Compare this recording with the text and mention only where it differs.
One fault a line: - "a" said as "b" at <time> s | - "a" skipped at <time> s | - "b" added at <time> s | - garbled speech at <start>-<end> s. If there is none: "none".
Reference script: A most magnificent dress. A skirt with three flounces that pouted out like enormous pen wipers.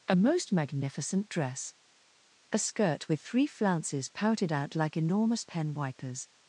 - "that" skipped at 4.1 s